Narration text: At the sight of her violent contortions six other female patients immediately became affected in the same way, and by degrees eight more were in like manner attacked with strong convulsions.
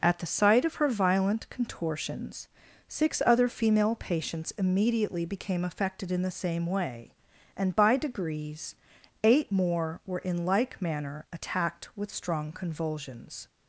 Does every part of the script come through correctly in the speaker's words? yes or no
yes